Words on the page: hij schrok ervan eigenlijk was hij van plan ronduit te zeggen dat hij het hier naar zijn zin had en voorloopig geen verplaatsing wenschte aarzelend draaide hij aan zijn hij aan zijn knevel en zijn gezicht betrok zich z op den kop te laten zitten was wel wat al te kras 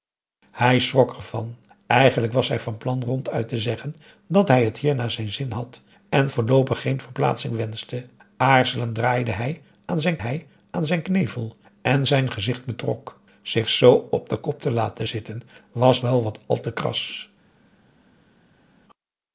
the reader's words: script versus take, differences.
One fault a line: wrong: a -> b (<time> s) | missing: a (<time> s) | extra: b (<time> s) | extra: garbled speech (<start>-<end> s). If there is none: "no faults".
no faults